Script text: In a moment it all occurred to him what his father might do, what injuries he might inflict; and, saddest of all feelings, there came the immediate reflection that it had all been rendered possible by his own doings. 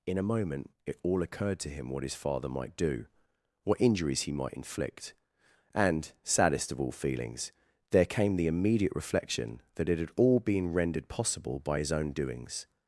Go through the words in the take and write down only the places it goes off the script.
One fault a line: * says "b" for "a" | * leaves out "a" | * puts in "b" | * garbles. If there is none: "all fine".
all fine